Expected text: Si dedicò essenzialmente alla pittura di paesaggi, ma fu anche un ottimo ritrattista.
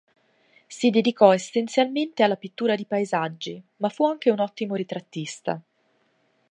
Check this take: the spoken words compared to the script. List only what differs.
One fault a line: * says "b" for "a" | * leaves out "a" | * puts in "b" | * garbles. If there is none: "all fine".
all fine